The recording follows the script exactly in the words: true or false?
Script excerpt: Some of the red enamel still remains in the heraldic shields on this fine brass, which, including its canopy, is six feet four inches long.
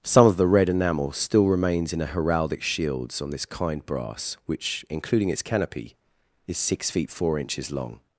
false